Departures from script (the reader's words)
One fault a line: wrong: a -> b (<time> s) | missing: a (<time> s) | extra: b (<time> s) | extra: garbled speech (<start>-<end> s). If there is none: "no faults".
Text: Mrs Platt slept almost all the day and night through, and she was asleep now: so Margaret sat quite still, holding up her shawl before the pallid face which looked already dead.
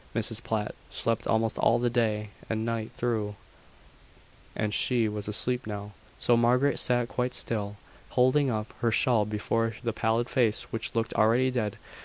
no faults